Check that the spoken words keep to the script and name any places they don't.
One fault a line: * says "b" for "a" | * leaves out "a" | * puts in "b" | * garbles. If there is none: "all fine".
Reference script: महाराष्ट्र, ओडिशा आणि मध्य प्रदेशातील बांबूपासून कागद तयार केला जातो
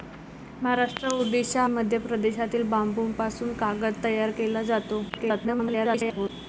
* leaves out "आणि"
* garbles